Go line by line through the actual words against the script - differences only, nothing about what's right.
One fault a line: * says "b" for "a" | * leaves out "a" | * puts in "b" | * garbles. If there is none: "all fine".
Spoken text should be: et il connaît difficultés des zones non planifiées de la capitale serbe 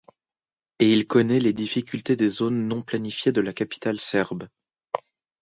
* puts in "les"